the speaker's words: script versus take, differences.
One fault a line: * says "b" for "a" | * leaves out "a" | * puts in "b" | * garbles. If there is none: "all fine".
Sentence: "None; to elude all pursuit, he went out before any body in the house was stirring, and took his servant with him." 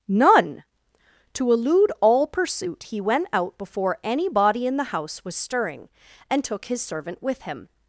all fine